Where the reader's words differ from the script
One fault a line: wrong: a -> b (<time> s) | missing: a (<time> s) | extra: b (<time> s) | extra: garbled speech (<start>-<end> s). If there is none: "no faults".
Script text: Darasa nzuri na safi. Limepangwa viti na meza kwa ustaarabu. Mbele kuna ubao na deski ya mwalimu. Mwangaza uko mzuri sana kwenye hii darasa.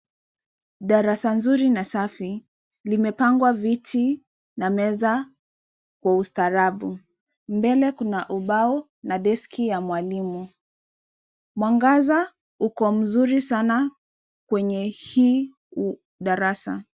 no faults